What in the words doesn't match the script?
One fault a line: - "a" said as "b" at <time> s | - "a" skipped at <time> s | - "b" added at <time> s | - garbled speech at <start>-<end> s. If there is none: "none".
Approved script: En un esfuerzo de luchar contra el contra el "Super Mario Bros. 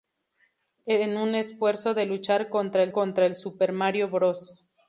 none